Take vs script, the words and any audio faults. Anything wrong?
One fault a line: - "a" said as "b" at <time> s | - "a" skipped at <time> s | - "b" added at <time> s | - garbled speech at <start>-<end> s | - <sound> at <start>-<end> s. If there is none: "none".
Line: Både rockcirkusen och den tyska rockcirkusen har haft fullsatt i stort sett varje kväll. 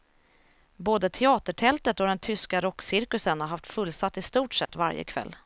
- "rockcirkusen" said as "teatertältet" at 1.1 s
- dropout at 4.7-4.7 s